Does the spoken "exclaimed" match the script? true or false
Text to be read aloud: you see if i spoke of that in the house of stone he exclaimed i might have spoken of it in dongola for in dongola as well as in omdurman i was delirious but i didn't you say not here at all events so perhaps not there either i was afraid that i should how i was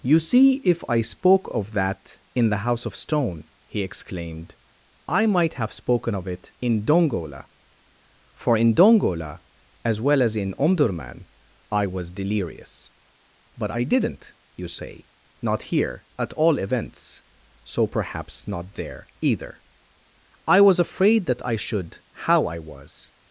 true